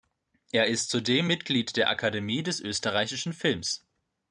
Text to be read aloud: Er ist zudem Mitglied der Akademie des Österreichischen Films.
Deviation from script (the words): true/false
false